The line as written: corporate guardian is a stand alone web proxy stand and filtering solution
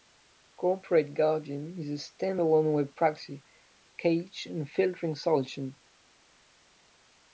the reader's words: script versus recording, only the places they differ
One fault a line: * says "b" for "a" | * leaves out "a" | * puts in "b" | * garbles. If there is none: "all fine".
* says "cache" for "stand"